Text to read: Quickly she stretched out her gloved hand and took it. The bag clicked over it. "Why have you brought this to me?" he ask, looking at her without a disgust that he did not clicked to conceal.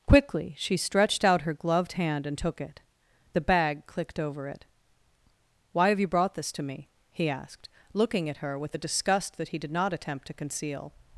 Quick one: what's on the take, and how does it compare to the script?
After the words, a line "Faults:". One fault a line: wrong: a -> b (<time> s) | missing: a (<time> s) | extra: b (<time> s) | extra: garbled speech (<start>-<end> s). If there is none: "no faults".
Quickly she stretched out her gloved hand and took it. The bag clicked over it. "Why have you brought this to me?" he asked, looking at her with a disgust that he did not attempt to conceal.
Faults:
wrong: ask -> asked (7.3 s)
wrong: without -> with (8.6 s)
wrong: clicked -> attempt (9.9 s)